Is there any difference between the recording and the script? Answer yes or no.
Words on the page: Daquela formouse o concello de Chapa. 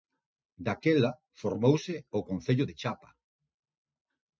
no